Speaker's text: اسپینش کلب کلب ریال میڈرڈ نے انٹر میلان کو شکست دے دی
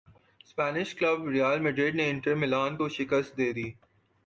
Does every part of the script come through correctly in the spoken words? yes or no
no